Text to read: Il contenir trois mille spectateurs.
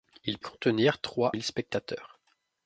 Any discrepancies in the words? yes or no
no